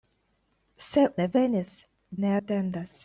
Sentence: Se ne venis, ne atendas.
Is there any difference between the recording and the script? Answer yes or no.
no